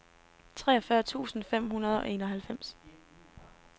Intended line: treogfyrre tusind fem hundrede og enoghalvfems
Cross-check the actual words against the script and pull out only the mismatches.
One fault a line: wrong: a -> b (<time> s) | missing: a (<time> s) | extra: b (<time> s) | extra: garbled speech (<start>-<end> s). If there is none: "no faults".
no faults